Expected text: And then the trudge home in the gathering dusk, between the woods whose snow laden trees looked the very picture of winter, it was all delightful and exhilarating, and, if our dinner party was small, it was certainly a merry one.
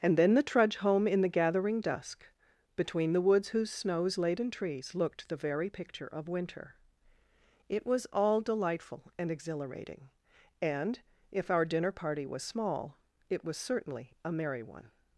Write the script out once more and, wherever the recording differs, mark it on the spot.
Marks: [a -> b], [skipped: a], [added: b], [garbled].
And then the trudge home in the gathering dusk, between the woods whose [snow -> snows] laden trees looked the very picture of winter, it was all delightful and exhilarating, and, if our dinner party was small, it was certainly a merry one.